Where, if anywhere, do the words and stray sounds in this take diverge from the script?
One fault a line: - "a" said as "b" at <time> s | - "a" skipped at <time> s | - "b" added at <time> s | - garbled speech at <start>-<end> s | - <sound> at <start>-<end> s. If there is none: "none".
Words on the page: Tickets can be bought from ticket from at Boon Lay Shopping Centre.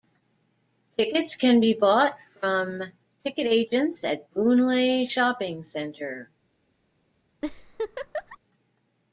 - "from" said as "agents" at 3.5 s
- laugh at 7.4-8.4 s